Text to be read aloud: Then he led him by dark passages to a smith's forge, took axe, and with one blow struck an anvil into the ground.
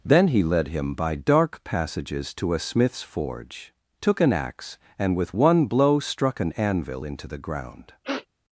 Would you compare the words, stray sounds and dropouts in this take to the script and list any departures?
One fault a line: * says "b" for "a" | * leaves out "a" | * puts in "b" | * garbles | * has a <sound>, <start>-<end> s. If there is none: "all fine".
* puts in "an"
* has a sniff, 8.0-8.3 s